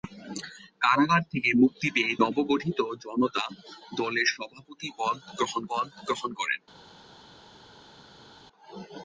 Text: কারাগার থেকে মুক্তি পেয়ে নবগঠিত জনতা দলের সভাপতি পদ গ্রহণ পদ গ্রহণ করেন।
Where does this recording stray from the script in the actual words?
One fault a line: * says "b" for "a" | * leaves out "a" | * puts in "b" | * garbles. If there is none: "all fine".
all fine